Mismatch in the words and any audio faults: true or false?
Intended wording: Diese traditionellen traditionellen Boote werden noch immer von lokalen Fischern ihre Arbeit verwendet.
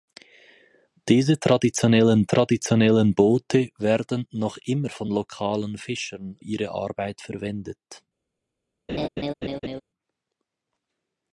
true